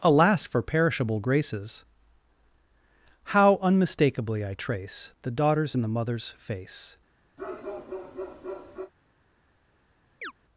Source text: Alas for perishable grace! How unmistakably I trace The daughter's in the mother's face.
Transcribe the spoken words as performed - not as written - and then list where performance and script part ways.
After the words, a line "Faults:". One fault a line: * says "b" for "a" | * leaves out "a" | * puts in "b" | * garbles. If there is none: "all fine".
Alas for perishable graces! How unmistakably I trace The daughter's in the mother's face.
Faults:
* says "graces" for "grace"